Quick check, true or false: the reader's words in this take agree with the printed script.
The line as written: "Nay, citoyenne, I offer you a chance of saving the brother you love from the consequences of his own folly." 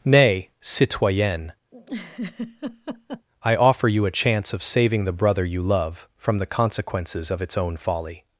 false